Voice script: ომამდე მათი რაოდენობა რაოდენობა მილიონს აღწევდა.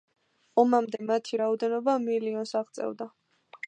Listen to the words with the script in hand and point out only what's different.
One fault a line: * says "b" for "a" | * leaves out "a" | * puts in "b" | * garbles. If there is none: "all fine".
* leaves out "რაოდენობა"